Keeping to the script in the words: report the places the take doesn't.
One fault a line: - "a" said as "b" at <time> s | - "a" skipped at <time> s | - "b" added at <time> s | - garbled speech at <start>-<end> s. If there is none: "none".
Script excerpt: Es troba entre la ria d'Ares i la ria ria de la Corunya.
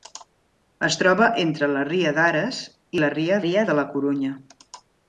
none